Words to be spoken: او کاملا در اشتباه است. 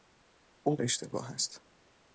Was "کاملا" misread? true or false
true